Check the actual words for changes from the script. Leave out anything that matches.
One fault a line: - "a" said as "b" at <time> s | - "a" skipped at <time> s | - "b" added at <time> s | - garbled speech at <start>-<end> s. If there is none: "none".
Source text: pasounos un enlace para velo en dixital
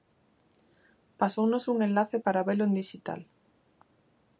none